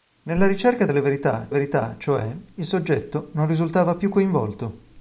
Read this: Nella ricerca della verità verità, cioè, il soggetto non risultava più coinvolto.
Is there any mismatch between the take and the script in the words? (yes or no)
no